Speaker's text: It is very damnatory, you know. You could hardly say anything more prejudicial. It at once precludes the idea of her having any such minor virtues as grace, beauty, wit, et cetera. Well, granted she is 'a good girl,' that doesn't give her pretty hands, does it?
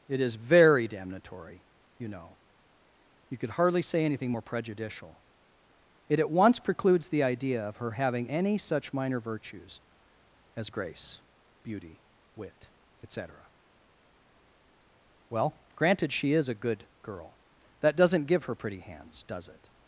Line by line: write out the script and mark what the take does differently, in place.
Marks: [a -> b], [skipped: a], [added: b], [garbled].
It is very damnatory, you know. You could hardly say anything more prejudicial. It at once precludes the idea of her having any such minor virtues as grace, beauty, wit, et cetera. Well, granted she is 'a good girl,' that doesn't give her pretty hands, does it?